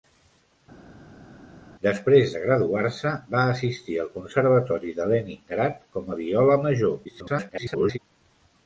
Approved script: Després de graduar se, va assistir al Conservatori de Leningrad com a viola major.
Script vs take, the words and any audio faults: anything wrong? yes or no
yes